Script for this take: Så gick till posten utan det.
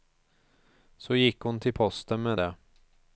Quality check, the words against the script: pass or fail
fail